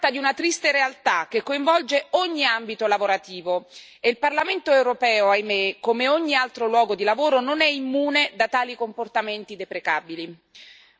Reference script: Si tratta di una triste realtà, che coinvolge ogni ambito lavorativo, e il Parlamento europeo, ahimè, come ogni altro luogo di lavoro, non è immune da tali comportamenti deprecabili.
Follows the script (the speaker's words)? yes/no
yes